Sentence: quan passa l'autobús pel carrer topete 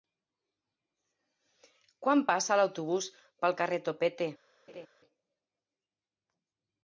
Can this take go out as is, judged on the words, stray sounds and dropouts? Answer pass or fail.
fail